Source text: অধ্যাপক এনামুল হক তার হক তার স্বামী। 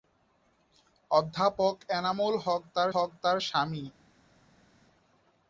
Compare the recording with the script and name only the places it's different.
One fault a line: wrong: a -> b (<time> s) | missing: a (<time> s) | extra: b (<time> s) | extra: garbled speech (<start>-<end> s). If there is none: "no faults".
no faults